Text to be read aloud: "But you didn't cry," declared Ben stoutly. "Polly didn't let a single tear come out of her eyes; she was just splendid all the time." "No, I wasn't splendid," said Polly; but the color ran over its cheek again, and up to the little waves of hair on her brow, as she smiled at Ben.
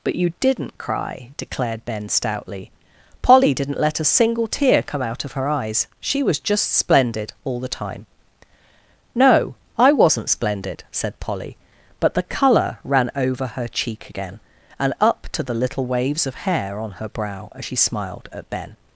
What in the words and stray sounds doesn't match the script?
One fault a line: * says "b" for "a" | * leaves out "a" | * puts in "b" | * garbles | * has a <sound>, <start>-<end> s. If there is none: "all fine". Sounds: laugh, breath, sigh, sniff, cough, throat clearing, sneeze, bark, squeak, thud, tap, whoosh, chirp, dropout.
* says "her" for "its"